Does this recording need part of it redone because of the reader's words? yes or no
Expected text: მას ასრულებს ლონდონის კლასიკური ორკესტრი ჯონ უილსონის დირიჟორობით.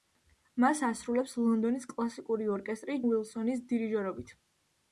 yes